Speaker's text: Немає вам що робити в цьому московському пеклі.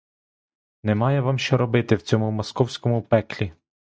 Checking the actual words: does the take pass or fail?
pass